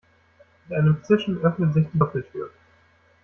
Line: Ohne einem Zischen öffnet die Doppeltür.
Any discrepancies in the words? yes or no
yes